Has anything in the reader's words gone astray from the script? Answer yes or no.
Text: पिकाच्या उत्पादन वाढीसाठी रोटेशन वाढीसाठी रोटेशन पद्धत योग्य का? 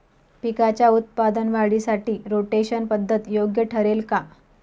yes